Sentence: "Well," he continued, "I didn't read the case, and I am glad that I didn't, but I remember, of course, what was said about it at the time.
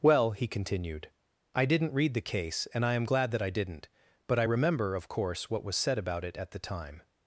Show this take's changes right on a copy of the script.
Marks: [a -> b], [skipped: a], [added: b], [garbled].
"Well," he continued, "I didn't read the case, and I am glad that I didn't, but I remember, of course, what was said about it at the time.